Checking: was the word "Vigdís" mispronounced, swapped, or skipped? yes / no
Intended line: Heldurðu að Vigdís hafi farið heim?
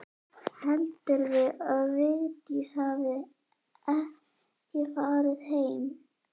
no